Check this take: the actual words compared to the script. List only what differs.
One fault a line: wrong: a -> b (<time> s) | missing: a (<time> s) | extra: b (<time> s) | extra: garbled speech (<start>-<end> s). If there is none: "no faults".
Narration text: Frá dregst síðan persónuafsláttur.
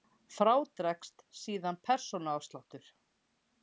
no faults